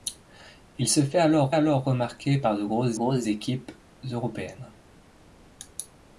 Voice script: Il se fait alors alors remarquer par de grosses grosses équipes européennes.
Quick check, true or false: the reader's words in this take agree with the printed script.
true